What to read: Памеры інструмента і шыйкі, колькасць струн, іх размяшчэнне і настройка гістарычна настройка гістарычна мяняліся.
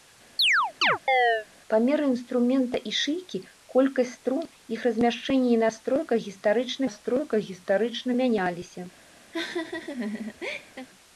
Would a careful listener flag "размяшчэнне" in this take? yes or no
no